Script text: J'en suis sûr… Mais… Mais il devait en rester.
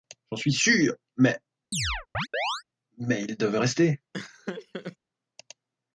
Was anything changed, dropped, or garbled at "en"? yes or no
yes